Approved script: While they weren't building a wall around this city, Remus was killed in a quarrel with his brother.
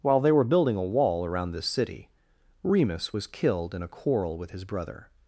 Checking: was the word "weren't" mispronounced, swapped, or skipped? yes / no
yes